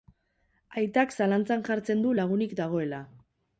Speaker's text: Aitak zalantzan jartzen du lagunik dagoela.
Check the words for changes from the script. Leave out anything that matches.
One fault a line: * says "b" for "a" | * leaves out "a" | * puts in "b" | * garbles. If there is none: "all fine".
all fine